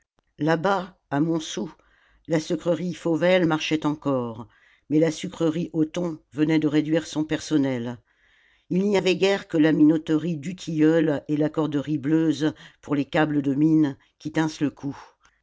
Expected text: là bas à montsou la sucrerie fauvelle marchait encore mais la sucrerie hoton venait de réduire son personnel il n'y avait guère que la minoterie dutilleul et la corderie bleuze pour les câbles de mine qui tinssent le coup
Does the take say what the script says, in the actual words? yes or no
yes